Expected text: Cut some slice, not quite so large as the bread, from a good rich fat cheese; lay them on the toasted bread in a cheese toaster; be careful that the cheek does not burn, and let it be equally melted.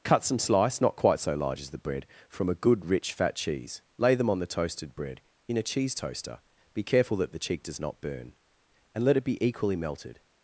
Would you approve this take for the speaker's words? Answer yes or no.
yes